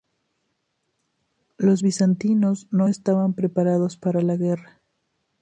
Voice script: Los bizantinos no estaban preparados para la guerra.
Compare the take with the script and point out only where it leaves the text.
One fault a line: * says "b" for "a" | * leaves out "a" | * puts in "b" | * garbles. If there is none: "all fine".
all fine